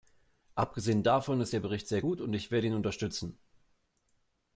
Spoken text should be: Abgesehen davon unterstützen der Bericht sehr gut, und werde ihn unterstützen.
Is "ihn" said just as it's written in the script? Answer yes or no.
yes